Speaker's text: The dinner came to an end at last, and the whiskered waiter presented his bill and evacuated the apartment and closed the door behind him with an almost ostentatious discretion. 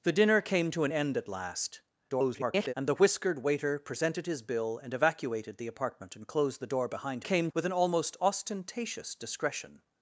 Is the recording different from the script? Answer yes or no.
yes